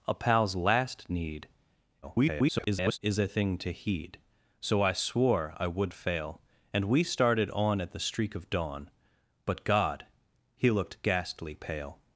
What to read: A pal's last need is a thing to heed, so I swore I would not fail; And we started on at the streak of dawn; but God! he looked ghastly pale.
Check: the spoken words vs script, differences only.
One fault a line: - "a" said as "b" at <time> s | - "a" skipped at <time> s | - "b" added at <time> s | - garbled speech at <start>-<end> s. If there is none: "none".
- garbled speech at 2.0-3.0 s
- "not" skipped at 5.9 s